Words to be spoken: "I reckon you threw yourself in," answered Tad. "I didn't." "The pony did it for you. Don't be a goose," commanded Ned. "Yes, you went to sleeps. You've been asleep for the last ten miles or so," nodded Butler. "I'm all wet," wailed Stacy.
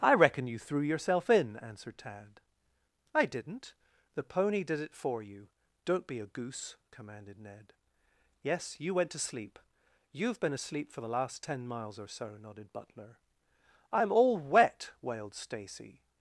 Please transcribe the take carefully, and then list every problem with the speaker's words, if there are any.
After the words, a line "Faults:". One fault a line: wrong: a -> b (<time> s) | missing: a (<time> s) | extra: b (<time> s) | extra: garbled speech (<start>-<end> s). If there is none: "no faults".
"I reckon you threw yourself in," answered Tad. "I didn't." "The pony did it for you. Don't be a goose," commanded Ned. "Yes, you went to sleep. You've been asleep for the last ten miles or so," nodded Butler. "I'm all wet," wailed Stacy.
Faults:
wrong: sleeps -> sleep (9.2 s)